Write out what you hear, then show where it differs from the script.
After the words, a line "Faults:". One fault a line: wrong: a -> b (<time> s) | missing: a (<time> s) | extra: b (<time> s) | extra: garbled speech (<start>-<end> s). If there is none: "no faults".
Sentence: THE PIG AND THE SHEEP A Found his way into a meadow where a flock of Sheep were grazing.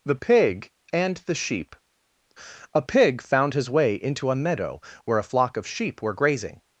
THE PIG AND THE SHEEP A Pig found his way into a meadow where a flock of Sheep were grazing.
Faults:
extra: Pig (2.8 s)